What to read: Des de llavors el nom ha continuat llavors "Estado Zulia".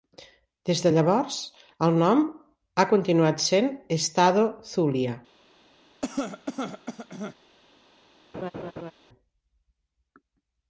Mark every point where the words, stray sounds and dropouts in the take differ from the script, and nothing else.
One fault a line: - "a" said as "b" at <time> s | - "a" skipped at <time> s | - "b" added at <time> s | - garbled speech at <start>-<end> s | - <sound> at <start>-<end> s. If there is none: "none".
- "llavors" said as "sent" at 3.5 s
- cough at 6.0-7.4 s
- laugh at 8.3-8.9 s